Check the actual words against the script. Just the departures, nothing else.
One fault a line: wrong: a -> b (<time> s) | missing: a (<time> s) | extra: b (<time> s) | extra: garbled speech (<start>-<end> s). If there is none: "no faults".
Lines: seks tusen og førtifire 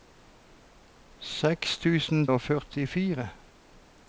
no faults